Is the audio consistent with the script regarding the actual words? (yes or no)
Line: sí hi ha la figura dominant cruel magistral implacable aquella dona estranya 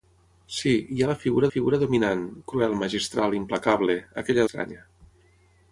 no